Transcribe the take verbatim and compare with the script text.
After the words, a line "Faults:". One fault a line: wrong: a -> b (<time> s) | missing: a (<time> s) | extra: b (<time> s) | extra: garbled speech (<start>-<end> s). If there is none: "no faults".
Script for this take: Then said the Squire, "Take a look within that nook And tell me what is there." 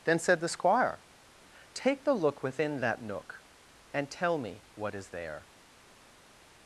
Then said the Squire, "Take the look within that nook And tell me what is there."
Faults:
wrong: a -> the (2.0 s)